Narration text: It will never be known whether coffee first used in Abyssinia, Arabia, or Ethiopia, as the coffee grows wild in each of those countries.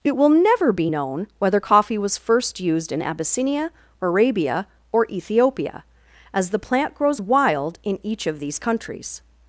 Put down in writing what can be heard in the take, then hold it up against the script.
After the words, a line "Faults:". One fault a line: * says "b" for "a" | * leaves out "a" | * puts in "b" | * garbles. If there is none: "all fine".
It will never be known whether coffee was first used in Abyssinia, Arabia, or Ethiopia, as the plant grows wild in each of these countries.
Faults:
* puts in "was"
* says "plant" for "coffee"
* says "these" for "those"